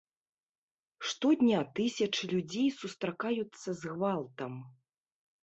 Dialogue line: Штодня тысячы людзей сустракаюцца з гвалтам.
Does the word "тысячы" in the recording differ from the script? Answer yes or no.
no